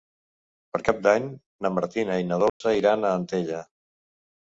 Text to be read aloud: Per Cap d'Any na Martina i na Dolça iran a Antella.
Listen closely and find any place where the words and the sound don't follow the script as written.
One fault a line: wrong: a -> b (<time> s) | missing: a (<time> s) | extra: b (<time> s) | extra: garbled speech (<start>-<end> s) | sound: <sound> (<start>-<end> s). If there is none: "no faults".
sound: dropout (2.5-2.6 s)